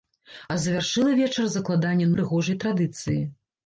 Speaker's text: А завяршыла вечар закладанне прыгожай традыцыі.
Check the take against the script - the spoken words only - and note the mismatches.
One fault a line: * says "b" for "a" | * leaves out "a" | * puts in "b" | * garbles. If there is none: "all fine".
all fine